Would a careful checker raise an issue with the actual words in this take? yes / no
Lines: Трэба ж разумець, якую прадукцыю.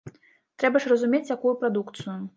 no